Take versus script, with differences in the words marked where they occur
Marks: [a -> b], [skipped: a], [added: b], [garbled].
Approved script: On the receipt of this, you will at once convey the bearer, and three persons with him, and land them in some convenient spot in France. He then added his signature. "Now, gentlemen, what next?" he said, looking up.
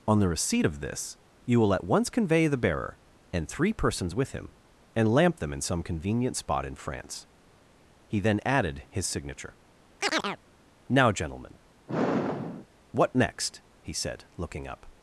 On the receipt of this, you will at once convey the bearer, and three persons with him, and [land -> lamp] them in some convenient spot in France. He then added his signature. "Now, gentlemen, what next?" he said, looking up.